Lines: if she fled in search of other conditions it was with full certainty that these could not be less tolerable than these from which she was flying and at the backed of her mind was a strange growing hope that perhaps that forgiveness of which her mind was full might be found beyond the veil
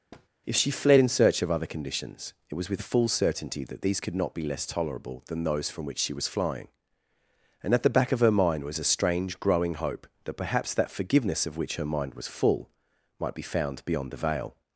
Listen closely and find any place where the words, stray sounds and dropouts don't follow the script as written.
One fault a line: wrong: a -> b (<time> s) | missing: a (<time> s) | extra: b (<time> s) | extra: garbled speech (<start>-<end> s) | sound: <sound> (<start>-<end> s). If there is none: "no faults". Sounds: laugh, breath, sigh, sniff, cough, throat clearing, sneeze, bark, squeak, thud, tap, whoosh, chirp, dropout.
sound: thud (0.1-0.3 s)
wrong: these -> those (5.4 s)
wrong: backed -> back (7.9 s)